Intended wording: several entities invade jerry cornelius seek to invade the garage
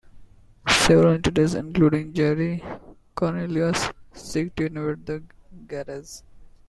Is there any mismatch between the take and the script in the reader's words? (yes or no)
yes